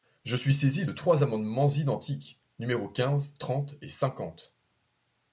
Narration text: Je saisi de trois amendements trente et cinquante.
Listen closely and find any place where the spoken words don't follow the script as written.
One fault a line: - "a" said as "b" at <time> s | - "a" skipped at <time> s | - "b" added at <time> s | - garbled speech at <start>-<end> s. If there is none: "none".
- "suis" added at 0.3 s
- "identiques numéros quinze" added at 1.7 s